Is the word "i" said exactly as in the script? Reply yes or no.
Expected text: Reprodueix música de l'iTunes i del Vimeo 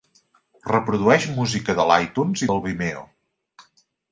yes